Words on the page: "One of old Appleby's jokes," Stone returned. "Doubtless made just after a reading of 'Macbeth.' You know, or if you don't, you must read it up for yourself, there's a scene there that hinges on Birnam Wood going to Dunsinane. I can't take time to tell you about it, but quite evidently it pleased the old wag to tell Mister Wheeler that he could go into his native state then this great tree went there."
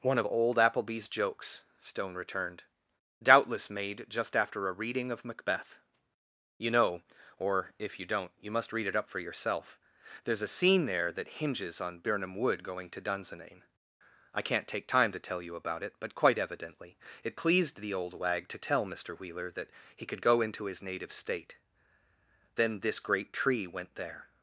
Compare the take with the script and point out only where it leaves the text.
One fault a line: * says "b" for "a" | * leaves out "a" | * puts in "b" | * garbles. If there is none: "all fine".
all fine